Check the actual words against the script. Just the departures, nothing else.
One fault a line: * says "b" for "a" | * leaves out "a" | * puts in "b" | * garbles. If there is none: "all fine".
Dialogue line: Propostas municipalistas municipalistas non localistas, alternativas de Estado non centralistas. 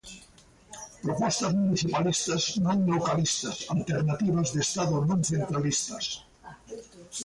* leaves out "municipalistas"